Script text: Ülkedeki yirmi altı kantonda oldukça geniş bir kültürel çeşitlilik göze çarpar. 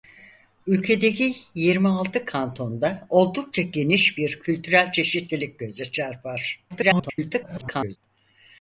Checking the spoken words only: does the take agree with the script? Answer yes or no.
no